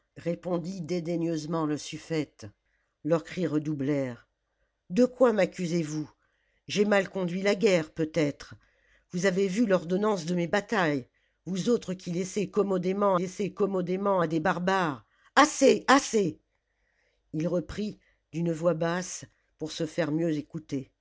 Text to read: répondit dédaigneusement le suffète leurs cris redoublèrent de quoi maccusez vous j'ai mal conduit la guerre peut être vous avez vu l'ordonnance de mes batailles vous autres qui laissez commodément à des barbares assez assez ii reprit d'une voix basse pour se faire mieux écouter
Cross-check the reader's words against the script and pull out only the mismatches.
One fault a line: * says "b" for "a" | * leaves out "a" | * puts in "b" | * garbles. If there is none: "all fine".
* puts in "laissez commodément"